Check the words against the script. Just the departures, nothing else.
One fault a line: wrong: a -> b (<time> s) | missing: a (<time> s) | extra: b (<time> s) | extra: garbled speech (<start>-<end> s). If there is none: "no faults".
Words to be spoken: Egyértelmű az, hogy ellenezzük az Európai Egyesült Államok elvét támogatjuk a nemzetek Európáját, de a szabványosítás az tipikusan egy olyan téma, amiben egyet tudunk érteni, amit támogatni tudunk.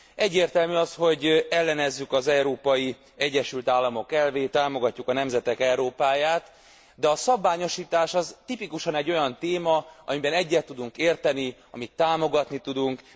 no faults